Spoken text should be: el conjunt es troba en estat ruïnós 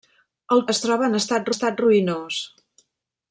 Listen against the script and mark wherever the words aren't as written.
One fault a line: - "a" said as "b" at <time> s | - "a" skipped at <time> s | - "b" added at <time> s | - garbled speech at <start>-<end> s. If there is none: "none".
- "conjunt" skipped at 0.6 s
- "estat" added at 1.5 s